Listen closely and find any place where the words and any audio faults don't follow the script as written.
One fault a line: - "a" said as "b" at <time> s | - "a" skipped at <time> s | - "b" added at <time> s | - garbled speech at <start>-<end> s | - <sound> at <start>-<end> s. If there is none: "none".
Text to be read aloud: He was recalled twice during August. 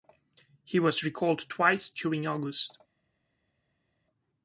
none